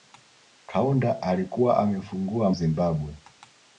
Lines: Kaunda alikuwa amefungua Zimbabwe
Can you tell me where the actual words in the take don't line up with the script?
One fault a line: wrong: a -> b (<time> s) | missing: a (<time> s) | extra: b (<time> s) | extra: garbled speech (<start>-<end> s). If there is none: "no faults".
no faults